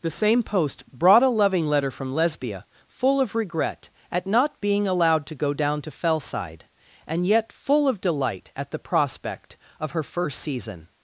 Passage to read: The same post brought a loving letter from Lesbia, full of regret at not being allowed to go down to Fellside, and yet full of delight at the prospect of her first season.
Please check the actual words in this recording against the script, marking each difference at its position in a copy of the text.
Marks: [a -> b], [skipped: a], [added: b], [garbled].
The same post brought a loving letter from Lesbia, full of regret at not being allowed to go down to Fellside, and yet full of delight at the prospect of her first season.